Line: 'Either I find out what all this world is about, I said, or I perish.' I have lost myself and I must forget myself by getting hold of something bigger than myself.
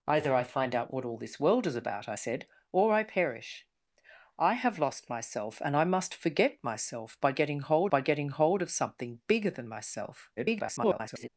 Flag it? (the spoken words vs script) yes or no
yes